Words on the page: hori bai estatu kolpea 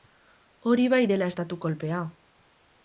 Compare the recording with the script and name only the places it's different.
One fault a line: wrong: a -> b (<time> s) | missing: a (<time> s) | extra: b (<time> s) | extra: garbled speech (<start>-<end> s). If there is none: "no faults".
extra: dela (1.1 s)